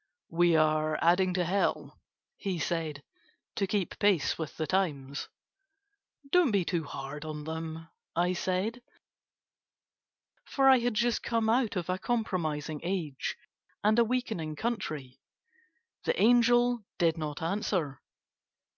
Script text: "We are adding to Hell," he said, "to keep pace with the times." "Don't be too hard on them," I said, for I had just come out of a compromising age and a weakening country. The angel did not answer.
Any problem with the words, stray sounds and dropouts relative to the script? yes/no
no